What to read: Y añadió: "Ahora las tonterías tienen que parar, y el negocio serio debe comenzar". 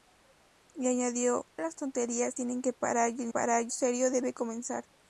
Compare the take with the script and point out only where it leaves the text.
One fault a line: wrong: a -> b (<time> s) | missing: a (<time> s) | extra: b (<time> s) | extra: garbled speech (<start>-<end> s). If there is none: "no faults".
missing: Ahora (1.4 s)
wrong: negocio -> parar (3.3 s)